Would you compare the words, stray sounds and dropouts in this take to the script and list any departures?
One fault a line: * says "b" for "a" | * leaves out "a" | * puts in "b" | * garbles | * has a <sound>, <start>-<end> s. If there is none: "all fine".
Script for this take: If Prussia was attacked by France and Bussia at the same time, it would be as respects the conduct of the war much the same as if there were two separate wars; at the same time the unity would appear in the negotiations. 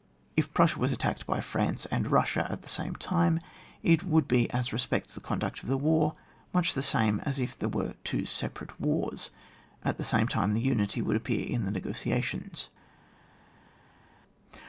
all fine